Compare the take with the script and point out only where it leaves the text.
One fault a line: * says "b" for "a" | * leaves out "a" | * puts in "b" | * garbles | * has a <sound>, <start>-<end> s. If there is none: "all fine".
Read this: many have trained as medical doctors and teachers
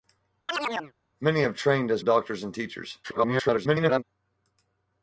* has a chirp, 0.5-0.9 s
* leaves out "medical"
* garbles